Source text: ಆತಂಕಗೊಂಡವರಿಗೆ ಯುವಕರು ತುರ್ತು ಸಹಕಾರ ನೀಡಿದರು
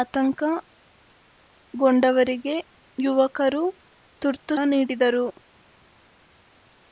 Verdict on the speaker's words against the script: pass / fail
fail